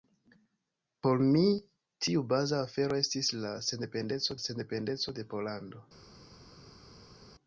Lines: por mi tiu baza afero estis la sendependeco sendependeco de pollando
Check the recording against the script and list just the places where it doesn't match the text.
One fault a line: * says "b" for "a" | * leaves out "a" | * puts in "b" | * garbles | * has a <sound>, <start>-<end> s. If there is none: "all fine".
all fine